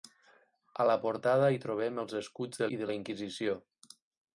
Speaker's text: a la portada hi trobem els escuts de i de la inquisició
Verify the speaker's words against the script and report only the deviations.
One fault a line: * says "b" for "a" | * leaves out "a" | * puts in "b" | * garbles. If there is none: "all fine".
all fine